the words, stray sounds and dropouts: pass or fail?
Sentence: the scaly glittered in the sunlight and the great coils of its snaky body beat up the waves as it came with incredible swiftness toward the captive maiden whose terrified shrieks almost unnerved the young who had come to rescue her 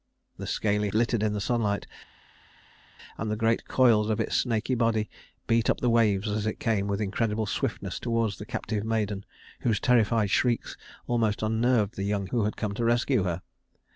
pass